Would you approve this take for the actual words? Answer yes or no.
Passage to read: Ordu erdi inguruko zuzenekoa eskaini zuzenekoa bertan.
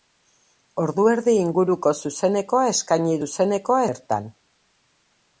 yes